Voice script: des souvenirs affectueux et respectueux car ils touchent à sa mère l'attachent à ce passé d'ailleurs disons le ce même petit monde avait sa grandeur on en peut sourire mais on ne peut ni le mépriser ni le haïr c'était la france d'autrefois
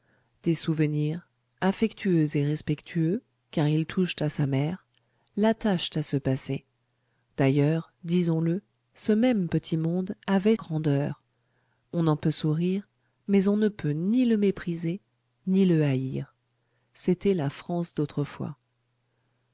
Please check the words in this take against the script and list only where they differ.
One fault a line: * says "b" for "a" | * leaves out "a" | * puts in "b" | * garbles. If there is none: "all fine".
* leaves out "sa"